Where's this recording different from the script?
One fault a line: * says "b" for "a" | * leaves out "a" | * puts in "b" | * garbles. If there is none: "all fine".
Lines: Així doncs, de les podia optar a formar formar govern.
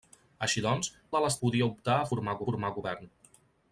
all fine